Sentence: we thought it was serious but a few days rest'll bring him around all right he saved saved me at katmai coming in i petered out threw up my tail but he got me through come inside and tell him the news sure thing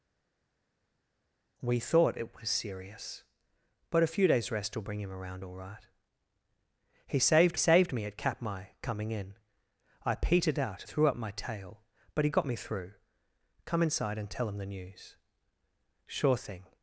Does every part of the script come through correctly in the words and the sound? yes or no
yes